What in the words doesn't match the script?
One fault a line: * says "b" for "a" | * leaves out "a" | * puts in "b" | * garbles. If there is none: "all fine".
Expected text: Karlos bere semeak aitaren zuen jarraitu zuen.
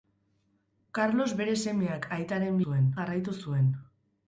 all fine